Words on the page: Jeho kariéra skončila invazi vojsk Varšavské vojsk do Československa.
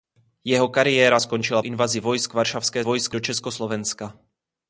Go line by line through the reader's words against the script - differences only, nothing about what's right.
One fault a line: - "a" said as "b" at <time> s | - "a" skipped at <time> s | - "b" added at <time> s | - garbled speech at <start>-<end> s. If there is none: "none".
none